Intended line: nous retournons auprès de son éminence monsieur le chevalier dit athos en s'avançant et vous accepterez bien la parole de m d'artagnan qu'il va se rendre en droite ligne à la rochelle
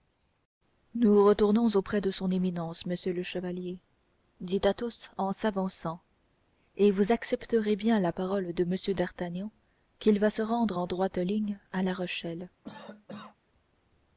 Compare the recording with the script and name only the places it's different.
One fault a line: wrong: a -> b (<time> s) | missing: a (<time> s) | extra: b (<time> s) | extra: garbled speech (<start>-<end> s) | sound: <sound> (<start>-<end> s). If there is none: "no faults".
sound: cough (12.6-13.4 s)